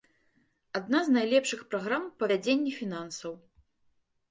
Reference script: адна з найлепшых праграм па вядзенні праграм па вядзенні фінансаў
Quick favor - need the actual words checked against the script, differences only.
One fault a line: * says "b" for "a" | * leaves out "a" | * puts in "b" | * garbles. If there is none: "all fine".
* leaves out "праграм па вядзенні"